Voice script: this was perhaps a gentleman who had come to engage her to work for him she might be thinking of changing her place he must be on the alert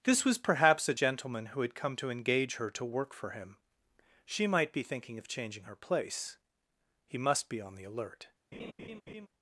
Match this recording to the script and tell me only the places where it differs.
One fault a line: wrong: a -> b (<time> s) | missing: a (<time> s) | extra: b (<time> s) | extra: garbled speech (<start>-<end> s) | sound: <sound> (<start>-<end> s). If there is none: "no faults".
sound: laugh (8.5-9.3 s)